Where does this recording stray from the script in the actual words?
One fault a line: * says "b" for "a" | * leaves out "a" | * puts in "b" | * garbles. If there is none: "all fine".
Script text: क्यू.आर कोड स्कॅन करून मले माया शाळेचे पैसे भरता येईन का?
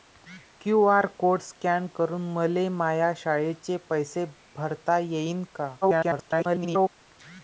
* garbles